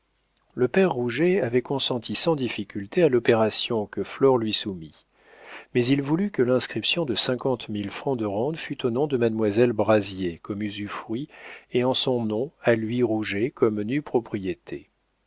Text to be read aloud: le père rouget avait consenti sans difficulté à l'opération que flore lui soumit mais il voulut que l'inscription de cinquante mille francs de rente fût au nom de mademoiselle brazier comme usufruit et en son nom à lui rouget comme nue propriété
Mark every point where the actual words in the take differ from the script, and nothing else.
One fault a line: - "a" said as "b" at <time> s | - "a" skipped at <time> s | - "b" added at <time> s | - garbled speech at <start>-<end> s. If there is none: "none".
none